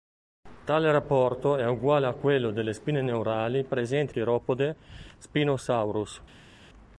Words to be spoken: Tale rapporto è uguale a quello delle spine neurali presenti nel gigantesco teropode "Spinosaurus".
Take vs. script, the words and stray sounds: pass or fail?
fail